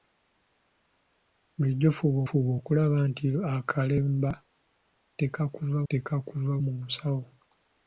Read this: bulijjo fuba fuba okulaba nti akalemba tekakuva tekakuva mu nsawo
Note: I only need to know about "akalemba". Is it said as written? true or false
true